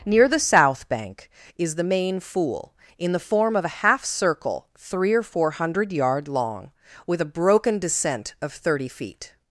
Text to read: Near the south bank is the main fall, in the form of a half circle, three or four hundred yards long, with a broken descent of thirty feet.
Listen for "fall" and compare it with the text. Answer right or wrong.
wrong